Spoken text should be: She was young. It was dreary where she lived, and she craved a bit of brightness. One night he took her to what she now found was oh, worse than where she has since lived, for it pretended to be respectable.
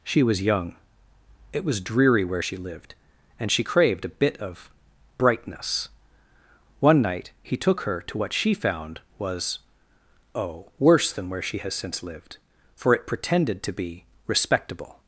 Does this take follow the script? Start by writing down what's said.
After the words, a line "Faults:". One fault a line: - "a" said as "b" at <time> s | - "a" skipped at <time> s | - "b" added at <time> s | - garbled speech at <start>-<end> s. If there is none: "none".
She was young. It was dreary where she lived, and she craved a bit of brightness. One night he took her to what she found was oh, worse than where she has since lived, for it pretended to be respectable.
Faults:
- "now" skipped at 8.5 s